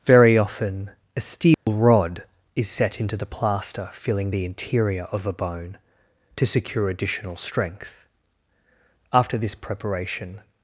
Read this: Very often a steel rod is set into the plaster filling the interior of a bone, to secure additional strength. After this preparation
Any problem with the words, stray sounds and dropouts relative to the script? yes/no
yes